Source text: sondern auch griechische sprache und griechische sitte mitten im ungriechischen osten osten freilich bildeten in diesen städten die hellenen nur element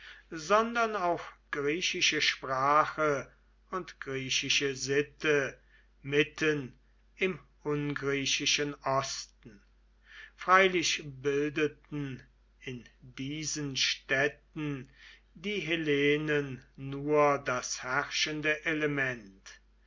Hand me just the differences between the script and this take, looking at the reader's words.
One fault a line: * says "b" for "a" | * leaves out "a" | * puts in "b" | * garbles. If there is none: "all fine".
* leaves out "osten"
* puts in "das herrschende"